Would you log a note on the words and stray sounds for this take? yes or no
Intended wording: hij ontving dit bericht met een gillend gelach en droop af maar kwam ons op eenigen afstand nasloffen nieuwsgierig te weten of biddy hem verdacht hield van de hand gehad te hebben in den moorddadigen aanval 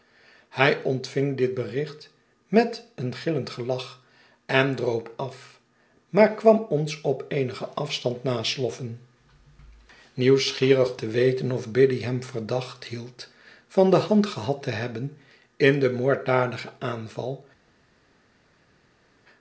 no